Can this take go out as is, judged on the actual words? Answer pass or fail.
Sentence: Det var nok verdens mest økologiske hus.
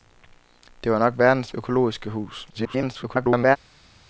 fail